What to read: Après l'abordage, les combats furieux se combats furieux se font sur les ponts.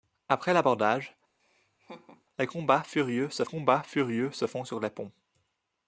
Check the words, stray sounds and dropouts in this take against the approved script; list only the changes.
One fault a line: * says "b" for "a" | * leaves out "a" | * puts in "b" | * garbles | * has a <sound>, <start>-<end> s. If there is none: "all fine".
* has a laugh, 1.4-2.2 s